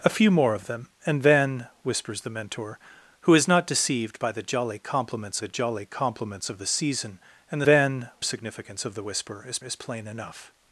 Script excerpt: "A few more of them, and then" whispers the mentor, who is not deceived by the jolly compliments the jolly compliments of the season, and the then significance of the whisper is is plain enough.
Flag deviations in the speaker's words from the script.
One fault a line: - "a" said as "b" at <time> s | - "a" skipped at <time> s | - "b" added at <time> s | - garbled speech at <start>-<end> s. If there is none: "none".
none